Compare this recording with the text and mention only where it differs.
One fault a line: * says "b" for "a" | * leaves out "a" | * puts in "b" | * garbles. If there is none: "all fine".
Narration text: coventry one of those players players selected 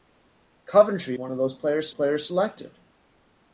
all fine